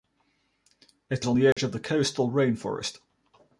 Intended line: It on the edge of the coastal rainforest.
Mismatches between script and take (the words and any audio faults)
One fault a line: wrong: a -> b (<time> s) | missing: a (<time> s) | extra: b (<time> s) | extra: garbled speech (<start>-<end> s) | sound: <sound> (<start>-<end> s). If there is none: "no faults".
sound: dropout (1.5-1.6 s)